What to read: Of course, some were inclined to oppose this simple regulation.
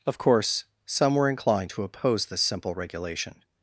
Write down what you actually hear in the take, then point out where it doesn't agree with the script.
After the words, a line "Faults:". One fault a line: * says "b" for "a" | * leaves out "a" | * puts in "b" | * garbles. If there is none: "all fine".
Of course, some were inclined to oppose this simple regulation.
Faults:
all fine